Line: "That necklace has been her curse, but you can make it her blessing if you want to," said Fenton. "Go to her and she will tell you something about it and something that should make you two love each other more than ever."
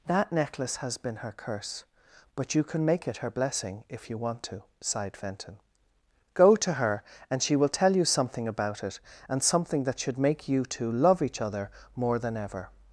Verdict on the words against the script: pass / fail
fail